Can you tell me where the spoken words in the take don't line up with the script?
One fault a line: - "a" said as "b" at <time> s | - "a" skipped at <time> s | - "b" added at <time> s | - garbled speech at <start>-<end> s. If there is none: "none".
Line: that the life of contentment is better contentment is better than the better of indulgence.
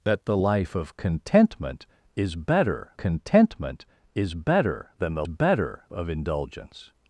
none